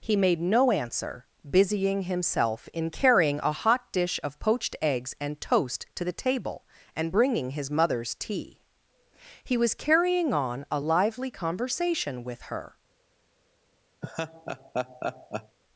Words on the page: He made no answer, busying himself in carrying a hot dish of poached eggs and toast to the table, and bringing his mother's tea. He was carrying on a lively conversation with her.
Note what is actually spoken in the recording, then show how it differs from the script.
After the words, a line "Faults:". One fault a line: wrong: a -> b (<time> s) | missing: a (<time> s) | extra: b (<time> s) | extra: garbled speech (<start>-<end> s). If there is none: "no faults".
He made no answer, busying himself in carrying a hot dish of poached eggs and toast to the table, and bringing his mother's tea. He was carrying on a lively conversation with her.
Faults:
no faults